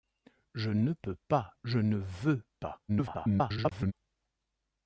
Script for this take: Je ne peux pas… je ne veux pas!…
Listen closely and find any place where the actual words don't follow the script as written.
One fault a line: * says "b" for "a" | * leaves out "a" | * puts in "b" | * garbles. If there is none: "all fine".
* garbles